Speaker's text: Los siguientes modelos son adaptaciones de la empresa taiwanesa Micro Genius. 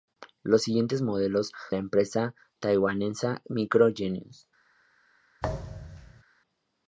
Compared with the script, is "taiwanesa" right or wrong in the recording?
right